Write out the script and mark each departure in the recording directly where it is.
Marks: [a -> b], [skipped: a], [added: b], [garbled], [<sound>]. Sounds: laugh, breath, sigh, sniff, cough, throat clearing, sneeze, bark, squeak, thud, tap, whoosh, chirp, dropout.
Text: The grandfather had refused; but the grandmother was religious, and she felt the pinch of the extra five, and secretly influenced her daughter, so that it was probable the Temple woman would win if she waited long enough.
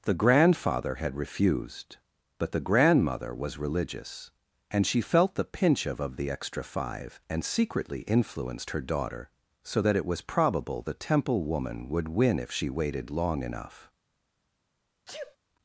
The grandfather had refused; but the grandmother was religious, and she felt the pinch of [added: of] the extra five, and secretly influenced her daughter, so that it was probable the Temple woman would win if she waited long enough. [sneeze]